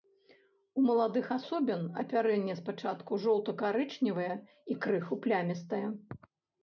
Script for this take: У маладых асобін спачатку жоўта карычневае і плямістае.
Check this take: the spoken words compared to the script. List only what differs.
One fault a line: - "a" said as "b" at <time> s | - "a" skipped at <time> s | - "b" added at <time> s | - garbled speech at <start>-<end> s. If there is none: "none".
- "апярэнне" added at 2.0 s
- "крыху" added at 4.9 s